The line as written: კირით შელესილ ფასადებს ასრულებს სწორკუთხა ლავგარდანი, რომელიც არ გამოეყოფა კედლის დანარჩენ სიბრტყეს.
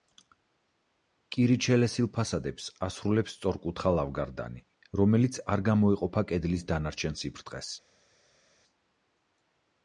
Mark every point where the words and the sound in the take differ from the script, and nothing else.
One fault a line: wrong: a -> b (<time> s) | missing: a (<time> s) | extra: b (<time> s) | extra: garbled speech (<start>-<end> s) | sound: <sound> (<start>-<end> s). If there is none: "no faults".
no faults